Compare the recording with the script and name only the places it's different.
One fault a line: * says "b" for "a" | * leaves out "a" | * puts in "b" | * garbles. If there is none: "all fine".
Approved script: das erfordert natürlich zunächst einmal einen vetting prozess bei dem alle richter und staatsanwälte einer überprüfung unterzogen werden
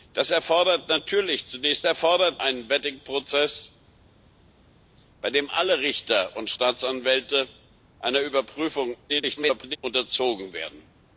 * says "erfordert" for "einmal"
* garbles